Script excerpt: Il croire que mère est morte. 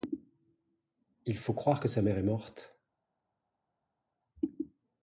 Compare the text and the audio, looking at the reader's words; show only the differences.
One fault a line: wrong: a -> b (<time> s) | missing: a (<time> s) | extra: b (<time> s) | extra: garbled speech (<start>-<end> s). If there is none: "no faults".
extra: faut (1.4 s)
extra: sa (1.9 s)